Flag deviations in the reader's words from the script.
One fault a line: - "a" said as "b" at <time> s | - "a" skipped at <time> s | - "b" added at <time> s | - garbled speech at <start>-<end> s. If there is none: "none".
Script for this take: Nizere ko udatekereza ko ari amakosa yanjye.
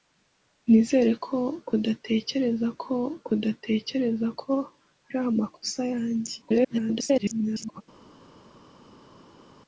- "udatekereza ko" added at 3.3 s
- garbled speech at 6.4-7.8 s